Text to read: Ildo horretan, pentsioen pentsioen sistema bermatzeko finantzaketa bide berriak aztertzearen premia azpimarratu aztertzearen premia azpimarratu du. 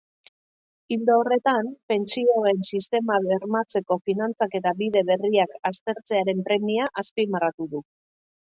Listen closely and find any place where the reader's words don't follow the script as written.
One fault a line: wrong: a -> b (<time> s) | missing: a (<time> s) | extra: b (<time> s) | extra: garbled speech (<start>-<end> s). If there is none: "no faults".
missing: pentsioen (2.6 s)
missing: aztertzearen premia azpimarratu (7.7 s)